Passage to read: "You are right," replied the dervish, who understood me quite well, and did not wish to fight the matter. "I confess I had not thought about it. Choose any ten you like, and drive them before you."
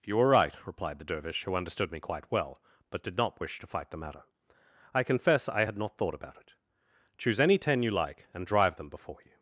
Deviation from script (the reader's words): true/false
true